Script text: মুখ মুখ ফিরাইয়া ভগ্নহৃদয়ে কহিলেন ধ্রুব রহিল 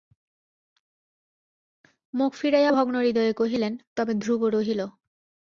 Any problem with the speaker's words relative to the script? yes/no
yes